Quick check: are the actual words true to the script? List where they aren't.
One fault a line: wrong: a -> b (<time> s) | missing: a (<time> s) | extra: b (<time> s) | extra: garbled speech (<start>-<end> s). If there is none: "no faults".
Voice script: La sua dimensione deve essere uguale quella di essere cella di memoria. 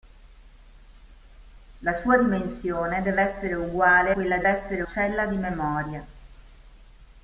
no faults